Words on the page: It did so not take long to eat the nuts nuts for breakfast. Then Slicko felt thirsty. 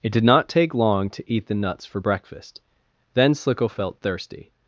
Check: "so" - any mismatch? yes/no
yes